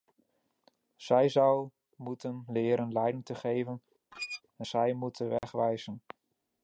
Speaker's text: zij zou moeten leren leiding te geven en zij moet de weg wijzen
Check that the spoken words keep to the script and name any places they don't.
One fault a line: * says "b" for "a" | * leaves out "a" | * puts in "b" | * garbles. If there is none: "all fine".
all fine